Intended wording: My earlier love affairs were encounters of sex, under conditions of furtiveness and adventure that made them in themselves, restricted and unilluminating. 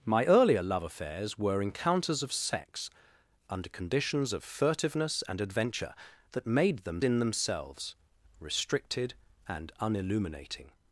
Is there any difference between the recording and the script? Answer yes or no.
no